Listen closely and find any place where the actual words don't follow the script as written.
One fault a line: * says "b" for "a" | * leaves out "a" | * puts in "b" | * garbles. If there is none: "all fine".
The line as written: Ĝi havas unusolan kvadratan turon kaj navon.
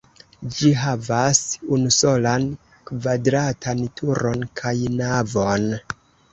all fine